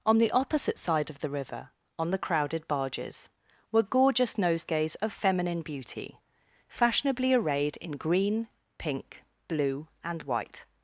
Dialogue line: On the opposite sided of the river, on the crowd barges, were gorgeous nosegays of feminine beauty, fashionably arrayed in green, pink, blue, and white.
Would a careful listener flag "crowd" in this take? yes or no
yes